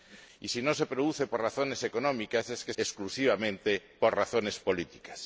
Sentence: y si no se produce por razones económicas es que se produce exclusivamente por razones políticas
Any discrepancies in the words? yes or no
yes